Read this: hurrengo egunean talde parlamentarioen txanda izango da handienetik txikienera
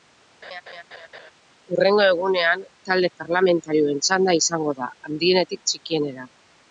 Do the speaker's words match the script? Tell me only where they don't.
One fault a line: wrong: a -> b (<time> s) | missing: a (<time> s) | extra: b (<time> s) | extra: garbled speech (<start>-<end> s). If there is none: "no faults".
no faults